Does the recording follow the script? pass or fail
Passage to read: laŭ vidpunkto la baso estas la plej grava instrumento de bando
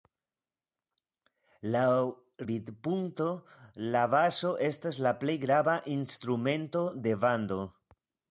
pass